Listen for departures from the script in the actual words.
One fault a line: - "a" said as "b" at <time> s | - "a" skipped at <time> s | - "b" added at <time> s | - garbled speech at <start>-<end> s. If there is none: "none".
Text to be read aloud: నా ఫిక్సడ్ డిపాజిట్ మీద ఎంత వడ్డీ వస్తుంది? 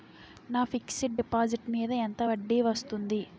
none